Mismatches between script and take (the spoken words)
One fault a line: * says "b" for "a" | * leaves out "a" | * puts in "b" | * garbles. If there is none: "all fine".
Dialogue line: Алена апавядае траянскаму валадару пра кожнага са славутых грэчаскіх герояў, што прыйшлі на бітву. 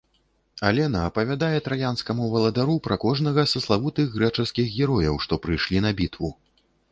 all fine